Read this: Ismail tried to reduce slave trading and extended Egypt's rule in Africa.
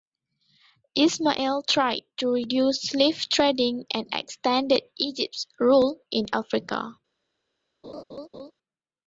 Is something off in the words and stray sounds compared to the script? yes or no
yes